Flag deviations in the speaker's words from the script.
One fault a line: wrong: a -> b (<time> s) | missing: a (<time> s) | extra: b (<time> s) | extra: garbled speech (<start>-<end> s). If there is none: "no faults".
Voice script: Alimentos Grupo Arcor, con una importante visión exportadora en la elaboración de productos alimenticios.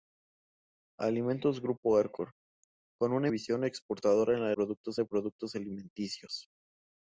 missing: importante (3.3 s)
wrong: elaboración -> productos (4.5 s)